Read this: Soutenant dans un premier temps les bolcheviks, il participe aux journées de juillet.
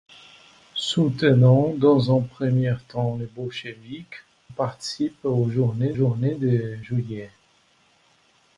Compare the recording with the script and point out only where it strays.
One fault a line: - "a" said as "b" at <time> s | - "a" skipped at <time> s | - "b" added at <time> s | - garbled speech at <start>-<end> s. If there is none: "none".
- "il" skipped at 4.2 s
- "journées" added at 5.9 s